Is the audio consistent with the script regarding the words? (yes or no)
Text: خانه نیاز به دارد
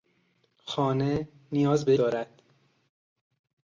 yes